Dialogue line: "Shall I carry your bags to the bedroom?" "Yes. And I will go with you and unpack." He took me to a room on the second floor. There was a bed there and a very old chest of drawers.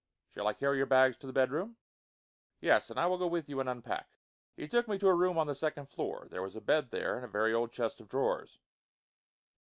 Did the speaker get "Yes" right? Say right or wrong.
right